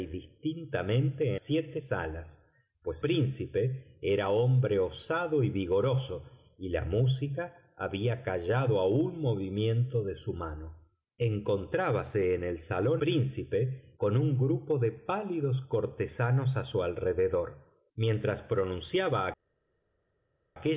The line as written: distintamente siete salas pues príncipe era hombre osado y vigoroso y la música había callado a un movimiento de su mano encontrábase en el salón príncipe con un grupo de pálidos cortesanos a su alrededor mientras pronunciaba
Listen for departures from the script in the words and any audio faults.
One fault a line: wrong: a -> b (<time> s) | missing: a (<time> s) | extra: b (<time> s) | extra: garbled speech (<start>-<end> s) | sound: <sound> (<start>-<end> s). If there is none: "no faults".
no faults